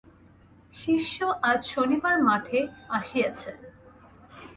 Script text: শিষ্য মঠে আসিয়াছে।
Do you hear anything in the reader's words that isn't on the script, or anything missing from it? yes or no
yes